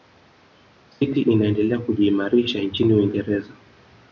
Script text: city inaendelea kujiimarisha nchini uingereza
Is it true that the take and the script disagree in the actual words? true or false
false